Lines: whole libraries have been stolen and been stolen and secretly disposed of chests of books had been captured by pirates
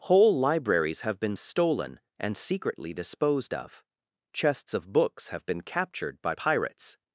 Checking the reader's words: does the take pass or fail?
fail